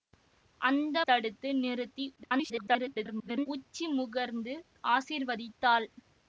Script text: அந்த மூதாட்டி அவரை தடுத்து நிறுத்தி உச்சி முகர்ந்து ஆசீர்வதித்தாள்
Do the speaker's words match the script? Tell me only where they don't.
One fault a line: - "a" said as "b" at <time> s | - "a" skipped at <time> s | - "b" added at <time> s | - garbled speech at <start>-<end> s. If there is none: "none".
- "மூதாட்டி அவரை" skipped at 1.0 s
- garbled speech at 2.2-3.5 s